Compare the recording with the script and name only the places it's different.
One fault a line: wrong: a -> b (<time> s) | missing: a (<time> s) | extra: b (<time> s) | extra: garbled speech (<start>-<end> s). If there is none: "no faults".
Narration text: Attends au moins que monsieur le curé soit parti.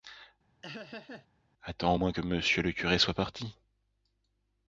no faults